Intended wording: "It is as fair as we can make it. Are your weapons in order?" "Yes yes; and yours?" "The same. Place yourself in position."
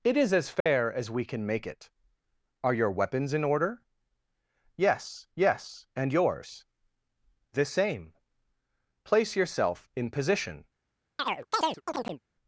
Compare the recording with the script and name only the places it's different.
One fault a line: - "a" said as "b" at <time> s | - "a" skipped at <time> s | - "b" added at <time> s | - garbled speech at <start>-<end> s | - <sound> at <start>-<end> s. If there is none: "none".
- dropout at 0.6-0.7 s
- chirp at 11.2-12.2 s